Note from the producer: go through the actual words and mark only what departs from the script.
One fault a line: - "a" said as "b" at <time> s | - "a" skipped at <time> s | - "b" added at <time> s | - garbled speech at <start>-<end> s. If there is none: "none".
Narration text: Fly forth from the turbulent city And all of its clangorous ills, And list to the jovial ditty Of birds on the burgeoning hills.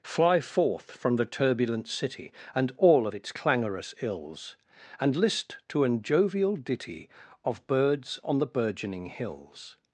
- "the" said as "an" at 5.8 s